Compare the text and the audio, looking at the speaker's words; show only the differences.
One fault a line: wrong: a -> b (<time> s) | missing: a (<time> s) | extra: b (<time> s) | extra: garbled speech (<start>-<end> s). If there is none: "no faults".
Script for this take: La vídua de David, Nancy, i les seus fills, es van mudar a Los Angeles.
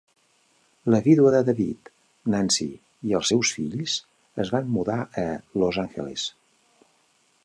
wrong: les -> els (3.2 s)